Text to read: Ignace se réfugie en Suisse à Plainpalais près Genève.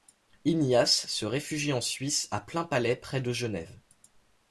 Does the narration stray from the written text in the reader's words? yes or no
yes